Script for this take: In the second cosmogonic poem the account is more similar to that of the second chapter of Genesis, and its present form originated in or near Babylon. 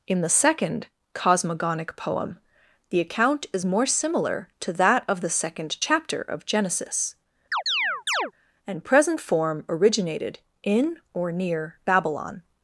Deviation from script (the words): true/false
true